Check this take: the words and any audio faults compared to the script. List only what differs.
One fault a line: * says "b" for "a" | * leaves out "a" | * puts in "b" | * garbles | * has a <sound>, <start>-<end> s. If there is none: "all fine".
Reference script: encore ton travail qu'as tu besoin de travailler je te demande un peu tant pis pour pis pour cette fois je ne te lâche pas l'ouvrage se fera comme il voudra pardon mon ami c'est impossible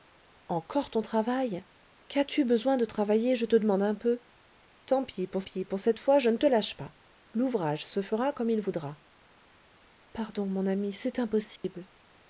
* has a dropout, 11.6-11.6 s